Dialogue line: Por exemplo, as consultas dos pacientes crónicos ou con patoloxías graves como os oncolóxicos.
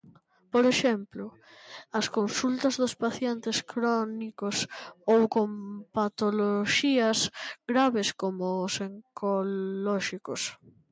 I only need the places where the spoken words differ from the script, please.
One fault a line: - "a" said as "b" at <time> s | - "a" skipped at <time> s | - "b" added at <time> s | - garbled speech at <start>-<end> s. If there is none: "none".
none